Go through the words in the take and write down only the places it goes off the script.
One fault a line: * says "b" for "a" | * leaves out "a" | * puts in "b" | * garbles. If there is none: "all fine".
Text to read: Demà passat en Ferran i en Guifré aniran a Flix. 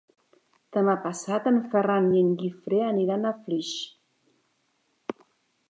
all fine